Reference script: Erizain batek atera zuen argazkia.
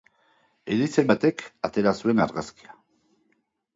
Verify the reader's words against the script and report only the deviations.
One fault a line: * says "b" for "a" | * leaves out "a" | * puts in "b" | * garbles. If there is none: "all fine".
all fine